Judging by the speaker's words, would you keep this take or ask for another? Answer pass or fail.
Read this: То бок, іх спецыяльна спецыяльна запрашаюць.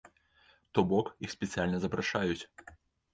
fail